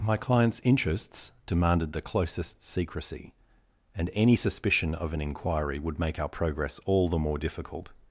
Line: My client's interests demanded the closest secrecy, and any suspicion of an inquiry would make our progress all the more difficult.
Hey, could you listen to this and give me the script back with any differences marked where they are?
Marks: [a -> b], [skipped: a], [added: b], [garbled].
My client's interests demanded the closest secrecy, and any suspicion of an inquiry would make our progress all the more difficult.